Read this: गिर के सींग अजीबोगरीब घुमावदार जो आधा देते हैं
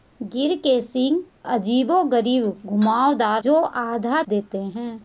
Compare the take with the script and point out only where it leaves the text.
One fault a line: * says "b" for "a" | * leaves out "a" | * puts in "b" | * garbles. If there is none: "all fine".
all fine